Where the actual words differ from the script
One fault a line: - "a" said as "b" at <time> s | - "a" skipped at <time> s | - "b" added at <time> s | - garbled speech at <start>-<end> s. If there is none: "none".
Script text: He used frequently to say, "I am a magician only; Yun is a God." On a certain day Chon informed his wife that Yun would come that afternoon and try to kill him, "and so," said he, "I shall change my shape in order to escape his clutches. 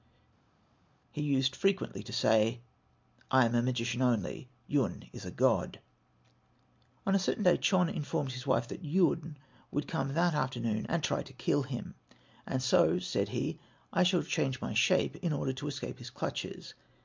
none